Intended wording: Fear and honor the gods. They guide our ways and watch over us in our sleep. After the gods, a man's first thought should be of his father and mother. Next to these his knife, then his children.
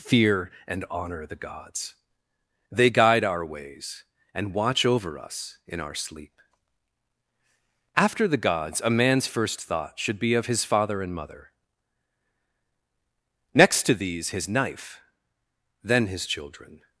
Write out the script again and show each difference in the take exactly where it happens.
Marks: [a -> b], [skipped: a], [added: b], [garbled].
Fear and honor the gods. They guide our ways and watch over us in our sleep. After the gods, a man's first thought should be of his father and mother. Next to these his knife, then his children.